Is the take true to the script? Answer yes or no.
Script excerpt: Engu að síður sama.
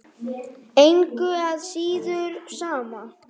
yes